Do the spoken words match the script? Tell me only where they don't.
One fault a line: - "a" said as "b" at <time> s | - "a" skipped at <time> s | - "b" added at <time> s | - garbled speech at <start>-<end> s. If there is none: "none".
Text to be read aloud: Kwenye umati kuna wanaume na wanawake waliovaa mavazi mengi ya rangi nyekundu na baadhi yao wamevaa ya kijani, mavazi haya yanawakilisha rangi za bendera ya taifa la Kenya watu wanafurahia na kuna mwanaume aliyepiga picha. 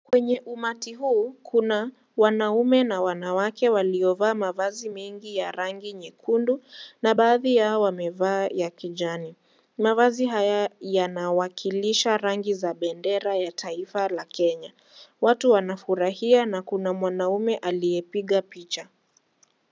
- "huu" added at 0.9 s